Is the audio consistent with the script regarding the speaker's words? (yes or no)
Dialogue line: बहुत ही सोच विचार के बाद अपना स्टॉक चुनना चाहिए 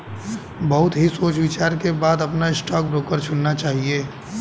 no